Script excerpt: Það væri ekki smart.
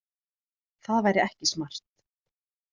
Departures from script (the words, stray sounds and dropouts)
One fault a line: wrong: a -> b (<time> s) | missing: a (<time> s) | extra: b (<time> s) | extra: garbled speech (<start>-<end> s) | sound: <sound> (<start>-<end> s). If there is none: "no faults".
no faults